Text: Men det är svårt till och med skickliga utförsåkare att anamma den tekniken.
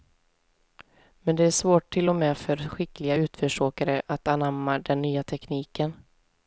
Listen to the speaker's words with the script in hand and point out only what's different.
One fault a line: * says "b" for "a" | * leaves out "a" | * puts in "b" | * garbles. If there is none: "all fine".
* puts in "för"
* puts in "nya"